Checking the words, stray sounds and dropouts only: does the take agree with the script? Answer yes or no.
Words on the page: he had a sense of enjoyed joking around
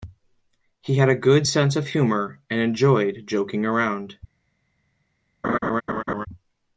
no